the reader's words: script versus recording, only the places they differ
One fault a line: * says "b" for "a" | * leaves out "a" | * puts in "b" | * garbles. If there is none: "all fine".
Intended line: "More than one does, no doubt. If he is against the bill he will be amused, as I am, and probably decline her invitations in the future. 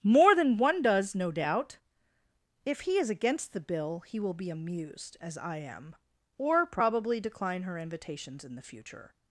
* says "or" for "and"